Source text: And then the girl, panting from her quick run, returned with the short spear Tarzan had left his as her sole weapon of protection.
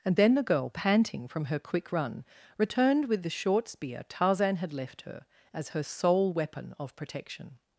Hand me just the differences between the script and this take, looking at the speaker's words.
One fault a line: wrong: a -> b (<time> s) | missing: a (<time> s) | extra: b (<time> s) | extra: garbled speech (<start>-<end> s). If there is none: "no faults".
wrong: his -> her (5.0 s)